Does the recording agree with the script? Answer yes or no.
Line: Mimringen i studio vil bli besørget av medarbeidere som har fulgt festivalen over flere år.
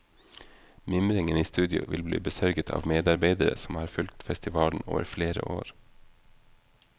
yes